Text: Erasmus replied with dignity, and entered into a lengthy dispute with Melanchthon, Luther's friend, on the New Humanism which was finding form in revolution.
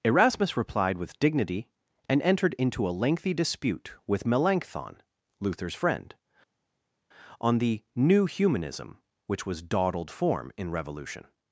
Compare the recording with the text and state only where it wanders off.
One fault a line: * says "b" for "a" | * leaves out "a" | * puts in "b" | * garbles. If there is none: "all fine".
* says "dawdled" for "finding"